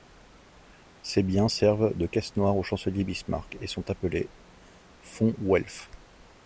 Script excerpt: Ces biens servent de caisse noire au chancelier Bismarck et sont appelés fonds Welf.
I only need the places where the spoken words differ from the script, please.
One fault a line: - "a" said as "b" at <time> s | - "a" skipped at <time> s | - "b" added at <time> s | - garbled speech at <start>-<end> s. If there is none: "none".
none